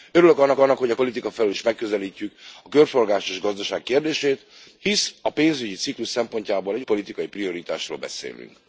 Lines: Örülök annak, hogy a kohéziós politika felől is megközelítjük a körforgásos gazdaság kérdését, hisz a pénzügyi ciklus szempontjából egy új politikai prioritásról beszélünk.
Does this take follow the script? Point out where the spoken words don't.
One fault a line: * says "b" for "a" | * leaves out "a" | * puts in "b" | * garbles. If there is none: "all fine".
* puts in "annak"
* leaves out "kohéziós"
* leaves out "új"